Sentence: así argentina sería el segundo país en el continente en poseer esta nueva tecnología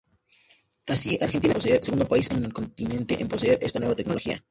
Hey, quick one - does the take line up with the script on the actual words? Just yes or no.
no